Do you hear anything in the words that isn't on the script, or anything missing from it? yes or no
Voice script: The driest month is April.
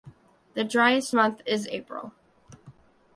no